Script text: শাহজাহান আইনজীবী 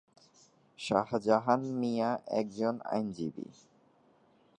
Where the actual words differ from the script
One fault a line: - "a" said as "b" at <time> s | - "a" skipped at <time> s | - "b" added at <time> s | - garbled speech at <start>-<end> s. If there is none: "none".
- "মিয়া একজন" added at 1.8 s